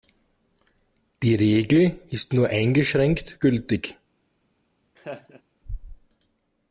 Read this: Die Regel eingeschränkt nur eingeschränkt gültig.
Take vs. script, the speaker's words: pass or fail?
fail